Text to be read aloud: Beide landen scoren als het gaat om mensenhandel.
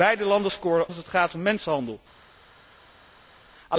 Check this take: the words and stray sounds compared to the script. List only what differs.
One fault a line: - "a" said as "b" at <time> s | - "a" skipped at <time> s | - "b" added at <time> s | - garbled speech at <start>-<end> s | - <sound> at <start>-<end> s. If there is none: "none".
none